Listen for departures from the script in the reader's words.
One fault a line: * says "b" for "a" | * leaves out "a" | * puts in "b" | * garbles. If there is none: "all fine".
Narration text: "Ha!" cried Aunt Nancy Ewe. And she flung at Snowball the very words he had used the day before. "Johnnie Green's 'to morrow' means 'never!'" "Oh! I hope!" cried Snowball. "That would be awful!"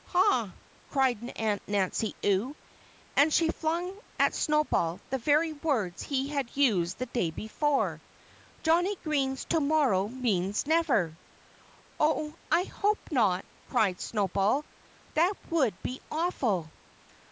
* puts in "not"